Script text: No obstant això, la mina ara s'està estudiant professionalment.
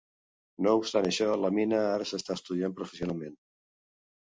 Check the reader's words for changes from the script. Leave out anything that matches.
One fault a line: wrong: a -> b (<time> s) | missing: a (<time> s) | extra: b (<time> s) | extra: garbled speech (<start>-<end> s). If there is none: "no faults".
no faults